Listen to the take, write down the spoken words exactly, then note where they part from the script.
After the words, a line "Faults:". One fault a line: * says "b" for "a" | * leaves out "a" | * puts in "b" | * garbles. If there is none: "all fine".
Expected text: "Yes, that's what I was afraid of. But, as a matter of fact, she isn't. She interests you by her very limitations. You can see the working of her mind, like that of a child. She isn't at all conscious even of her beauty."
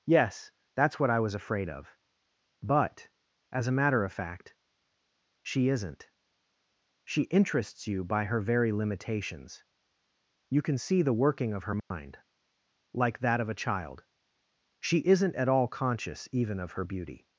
"Yes, that's what I was afraid of. But, as a matter of fact, she isn't. She interests you by her very limitations. You can see the working of her mind, like that of a child. She isn't at all conscious even of her beauty."
Faults:
all fine